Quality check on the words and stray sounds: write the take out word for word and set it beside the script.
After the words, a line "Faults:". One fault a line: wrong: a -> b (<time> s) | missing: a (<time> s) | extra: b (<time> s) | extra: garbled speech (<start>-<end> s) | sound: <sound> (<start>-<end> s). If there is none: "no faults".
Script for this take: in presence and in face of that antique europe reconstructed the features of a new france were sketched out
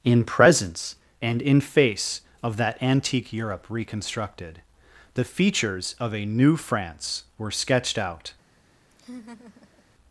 in presence and in face of that antique europe reconstructed the features of a new france were sketched out
Faults:
sound: laugh (8.9-9.8 s)